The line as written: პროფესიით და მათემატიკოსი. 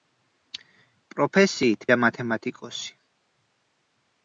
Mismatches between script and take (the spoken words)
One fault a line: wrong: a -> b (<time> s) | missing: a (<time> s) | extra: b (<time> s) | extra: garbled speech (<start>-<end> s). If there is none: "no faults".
no faults